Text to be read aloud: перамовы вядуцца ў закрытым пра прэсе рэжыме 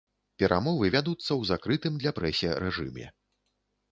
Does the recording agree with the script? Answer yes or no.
no